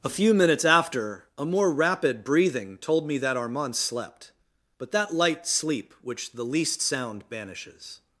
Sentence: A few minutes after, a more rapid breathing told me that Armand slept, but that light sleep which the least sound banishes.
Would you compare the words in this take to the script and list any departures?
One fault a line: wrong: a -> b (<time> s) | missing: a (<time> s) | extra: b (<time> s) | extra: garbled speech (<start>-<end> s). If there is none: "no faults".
no faults